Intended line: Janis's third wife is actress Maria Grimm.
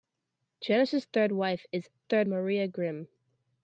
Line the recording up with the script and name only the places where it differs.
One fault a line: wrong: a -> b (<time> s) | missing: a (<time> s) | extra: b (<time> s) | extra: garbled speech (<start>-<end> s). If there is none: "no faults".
wrong: actress -> third (2.0 s)